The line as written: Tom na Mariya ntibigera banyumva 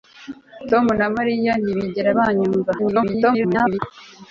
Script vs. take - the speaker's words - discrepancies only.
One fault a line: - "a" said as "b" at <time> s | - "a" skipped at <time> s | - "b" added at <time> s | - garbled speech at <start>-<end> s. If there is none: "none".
- garbled speech at 2.8-3.8 s